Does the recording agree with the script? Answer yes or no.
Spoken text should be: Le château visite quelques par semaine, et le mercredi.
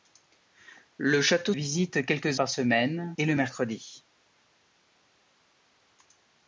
yes